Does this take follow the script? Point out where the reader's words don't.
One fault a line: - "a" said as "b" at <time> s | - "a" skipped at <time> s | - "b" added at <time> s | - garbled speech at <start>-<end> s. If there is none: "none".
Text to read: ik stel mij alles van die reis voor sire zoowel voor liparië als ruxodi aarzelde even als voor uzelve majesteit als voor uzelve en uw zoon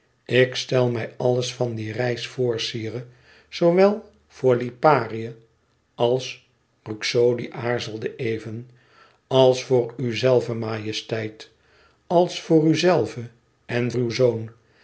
none